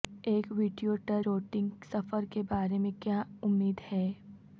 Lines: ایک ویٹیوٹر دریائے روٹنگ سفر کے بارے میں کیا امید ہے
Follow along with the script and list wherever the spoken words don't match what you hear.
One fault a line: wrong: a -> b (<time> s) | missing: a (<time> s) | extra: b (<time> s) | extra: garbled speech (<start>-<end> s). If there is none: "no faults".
missing: دریائے (1.2 s)